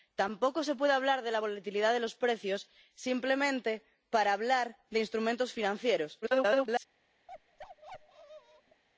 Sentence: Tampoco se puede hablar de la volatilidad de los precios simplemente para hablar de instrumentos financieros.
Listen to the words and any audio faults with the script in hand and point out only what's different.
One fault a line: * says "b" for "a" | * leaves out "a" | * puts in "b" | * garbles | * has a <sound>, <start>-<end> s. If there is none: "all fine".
* garbles
* has a bark, 7.3-8.8 s